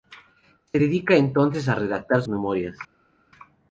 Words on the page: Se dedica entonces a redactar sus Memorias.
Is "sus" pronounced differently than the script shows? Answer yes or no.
yes